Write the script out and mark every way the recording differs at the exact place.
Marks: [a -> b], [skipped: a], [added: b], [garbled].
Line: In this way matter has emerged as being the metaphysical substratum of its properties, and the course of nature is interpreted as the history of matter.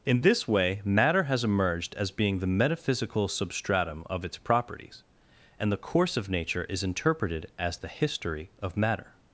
In this way matter has emerged as being the metaphysical substratum of its properties, and the course of nature is interpreted as the history of matter.